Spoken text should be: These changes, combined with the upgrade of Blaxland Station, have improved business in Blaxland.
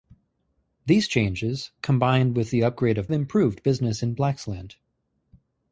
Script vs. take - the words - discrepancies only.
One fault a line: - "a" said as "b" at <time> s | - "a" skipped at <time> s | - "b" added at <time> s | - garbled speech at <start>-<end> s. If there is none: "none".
- "Blaxland Station have" skipped at 3.1 s